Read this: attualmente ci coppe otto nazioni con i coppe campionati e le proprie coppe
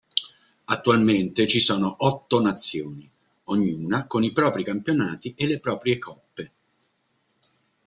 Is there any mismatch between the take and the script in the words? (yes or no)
yes